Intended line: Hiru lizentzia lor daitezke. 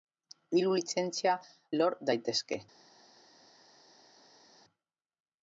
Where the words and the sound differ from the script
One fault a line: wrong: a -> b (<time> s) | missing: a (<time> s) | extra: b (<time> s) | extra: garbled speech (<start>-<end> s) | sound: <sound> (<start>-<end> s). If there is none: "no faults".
no faults